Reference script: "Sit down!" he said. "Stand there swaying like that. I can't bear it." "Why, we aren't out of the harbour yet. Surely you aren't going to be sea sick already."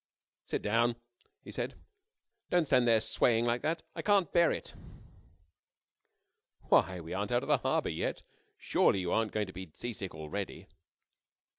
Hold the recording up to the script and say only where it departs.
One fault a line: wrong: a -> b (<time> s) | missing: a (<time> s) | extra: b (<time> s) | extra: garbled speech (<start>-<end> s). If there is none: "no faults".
extra: Don't (2.5 s)